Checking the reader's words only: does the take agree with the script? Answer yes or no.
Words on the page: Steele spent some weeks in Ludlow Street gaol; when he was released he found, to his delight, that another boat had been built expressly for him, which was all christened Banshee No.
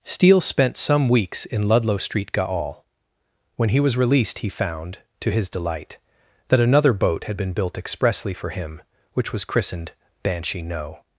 no